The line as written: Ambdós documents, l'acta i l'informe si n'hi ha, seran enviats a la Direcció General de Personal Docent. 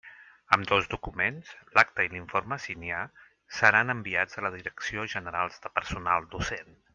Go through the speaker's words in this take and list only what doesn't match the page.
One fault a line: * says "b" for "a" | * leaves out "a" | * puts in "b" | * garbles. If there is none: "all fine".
all fine